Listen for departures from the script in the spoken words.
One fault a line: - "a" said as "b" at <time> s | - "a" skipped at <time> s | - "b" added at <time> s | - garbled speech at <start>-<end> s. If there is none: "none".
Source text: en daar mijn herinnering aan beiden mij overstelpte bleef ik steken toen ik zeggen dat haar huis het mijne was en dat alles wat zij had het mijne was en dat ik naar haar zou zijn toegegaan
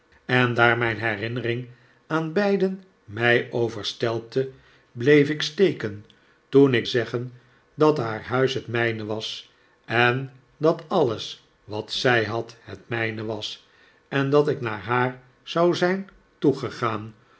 none